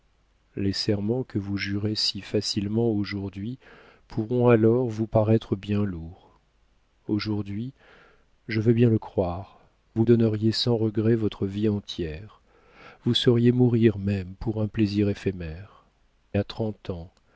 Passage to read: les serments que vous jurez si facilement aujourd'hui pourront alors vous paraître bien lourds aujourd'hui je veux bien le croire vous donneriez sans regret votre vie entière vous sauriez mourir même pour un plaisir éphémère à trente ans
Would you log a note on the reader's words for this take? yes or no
no